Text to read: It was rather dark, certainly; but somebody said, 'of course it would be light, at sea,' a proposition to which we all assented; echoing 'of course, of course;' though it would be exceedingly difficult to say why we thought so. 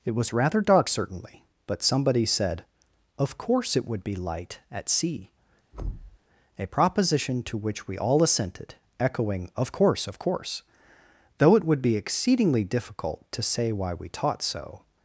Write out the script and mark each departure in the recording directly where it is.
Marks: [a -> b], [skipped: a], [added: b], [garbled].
It was rather dark, certainly; but somebody said, 'of course it would be light, at sea,' a proposition to which we all assented; echoing 'of course, of course;' though it would be exceedingly difficult to say why we [thought -> taught] so.